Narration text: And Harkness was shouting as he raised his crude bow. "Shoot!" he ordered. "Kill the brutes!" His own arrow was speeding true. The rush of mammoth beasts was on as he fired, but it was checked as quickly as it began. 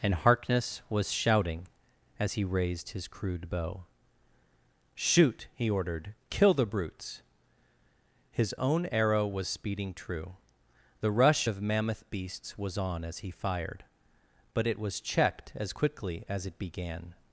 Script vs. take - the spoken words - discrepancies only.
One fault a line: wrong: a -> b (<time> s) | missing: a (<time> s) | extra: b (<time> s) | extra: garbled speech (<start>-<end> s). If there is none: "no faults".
no faults